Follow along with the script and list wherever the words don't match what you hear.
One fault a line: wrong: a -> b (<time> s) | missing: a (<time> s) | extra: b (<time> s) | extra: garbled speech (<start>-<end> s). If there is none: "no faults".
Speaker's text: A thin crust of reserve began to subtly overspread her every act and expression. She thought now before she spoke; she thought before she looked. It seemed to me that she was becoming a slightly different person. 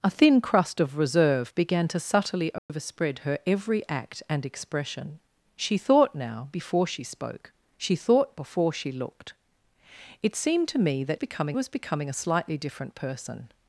wrong: she -> becoming (11.1 s)